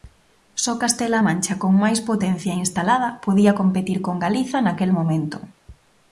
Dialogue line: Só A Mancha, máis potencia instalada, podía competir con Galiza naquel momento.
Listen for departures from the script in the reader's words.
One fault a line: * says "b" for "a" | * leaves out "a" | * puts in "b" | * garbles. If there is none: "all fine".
* puts in "Castela"
* puts in "con"